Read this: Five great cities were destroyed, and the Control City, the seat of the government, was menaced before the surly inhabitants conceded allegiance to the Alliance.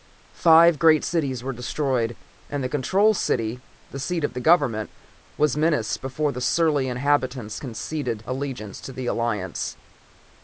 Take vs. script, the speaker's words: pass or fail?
pass